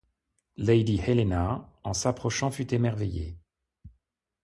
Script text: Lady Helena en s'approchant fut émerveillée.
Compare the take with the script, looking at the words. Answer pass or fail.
pass